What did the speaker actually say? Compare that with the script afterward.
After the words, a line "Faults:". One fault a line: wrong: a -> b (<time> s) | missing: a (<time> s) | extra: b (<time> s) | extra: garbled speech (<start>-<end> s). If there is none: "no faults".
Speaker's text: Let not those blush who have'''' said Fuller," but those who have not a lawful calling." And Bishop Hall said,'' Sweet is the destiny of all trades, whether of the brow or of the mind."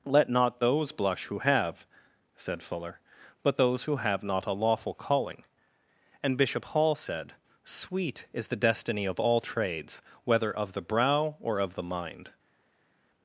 Let not those blush who have'''' said Fuller," but those who have not a lawful calling." And Bishop Hall said,'' Sweet is the destiny of all trades, whether of the brow or of the mind."
Faults:
no faults